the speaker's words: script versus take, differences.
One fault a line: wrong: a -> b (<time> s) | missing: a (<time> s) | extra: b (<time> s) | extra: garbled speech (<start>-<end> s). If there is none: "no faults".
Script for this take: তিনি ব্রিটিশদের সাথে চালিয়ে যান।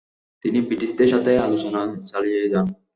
extra: আলোচনা (1.5 s)